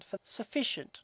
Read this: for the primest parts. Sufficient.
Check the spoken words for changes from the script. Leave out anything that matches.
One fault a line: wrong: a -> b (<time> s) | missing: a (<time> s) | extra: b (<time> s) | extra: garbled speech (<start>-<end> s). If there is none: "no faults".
missing: the primest parts (0.2 s)